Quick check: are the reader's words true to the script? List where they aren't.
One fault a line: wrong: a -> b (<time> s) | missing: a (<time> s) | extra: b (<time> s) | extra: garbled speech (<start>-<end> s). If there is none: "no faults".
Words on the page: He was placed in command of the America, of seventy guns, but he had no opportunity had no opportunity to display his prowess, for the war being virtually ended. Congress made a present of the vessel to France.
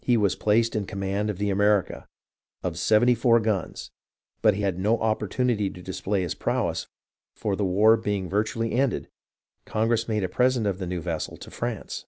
extra: four (3.1 s)
missing: had no opportunity (5.7 s)
extra: new (10.9 s)